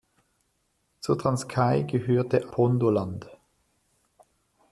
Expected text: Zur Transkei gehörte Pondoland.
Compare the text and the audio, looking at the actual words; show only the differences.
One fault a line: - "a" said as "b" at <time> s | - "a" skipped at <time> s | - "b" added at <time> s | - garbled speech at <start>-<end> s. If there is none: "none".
none